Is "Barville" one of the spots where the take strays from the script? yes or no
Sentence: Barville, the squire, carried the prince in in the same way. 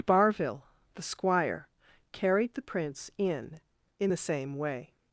no